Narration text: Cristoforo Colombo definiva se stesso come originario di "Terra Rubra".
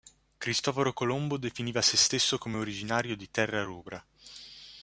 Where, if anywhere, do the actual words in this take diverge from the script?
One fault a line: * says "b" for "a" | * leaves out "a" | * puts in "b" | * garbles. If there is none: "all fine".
all fine